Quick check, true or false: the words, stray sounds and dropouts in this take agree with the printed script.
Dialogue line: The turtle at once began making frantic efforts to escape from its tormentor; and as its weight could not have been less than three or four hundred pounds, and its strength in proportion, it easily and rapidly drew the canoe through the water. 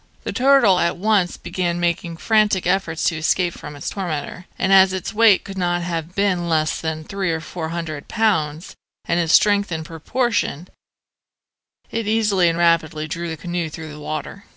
true